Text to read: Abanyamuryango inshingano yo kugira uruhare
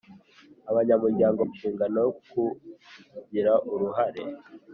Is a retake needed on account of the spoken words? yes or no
no